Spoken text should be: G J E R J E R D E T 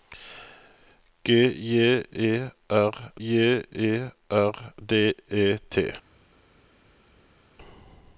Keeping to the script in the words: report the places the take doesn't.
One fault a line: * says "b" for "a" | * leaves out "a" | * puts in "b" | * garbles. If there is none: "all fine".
all fine